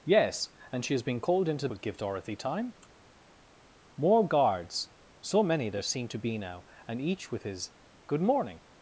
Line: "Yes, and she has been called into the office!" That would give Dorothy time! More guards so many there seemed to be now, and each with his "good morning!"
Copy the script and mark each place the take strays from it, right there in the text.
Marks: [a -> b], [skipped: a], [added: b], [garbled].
"Yes, and she has been called into [skipped: the office!" That] would give Dorothy time! More guards so many there seemed to be now, and each with his "good morning!"